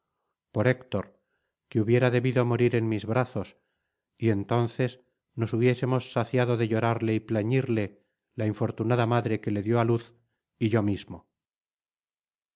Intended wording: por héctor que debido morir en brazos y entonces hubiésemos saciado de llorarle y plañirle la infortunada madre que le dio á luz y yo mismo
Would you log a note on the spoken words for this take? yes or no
yes